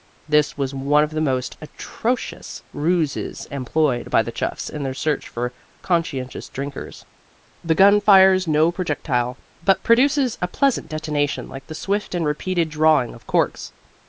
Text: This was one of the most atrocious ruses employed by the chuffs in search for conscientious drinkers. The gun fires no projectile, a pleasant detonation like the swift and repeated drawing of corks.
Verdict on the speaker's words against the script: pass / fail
fail